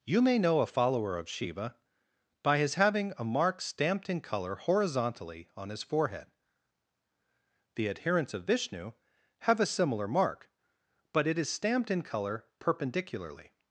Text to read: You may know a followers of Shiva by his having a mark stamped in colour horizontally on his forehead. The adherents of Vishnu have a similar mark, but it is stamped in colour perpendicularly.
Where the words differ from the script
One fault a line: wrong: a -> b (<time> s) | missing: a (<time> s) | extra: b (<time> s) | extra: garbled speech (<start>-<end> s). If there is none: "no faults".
wrong: followers -> follower (0.7 s)